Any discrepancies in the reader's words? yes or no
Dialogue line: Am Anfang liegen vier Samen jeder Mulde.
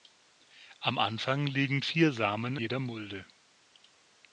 no